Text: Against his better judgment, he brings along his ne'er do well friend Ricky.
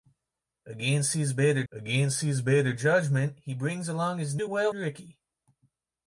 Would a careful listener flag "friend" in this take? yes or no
yes